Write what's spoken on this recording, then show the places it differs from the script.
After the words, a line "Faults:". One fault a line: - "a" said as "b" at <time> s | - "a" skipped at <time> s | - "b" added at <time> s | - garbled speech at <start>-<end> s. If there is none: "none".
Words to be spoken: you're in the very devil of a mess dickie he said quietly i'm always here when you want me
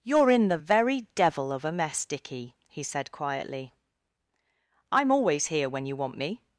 you're in the very devil of a mess dickie he said quietly i'm always here when you want me
Faults:
none